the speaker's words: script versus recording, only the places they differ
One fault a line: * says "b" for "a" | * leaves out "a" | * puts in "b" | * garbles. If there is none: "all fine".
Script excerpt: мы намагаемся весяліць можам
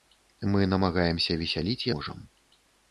all fine